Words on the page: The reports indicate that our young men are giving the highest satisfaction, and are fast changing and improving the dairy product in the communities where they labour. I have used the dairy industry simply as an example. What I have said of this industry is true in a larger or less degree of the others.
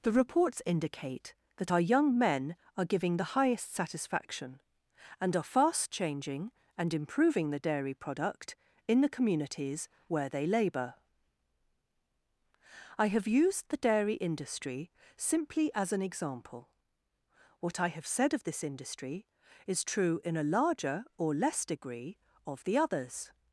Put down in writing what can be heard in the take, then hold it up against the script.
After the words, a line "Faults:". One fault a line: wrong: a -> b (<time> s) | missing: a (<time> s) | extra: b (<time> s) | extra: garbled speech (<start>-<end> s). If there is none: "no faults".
The reports indicate that our young men are giving the highest satisfaction, and are fast changing and improving the dairy product in the communities where they labour. I have used the dairy industry simply as an example. What I have said of this industry is true in a larger or less degree of the others.
Faults:
no faults